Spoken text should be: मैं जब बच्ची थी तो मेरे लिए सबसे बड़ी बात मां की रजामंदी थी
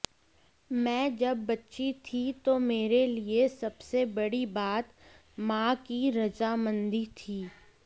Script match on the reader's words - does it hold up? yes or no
yes